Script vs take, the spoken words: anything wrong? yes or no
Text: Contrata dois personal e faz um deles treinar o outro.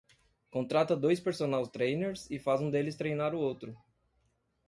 yes